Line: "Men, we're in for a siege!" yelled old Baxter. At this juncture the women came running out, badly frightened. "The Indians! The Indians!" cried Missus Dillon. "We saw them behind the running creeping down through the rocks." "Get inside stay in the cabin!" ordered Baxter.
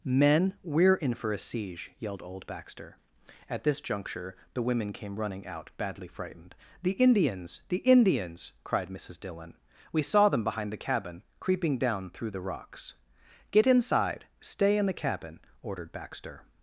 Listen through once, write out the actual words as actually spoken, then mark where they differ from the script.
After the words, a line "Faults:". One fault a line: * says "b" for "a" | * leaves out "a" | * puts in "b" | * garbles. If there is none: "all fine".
"Men, we're in for a siege!" yelled old Baxter. At this juncture the women came running out, badly frightened. "The Indians! The Indians!" cried Missus Dillon. "We saw them behind the cabin creeping down through the rocks." "Get inside stay in the cabin!" ordered Baxter.
Faults:
* says "cabin" for "running"